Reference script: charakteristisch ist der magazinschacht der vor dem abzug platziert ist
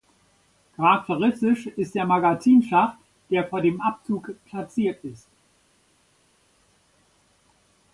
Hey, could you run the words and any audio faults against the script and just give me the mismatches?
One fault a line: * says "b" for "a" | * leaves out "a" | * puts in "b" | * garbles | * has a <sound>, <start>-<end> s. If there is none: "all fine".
all fine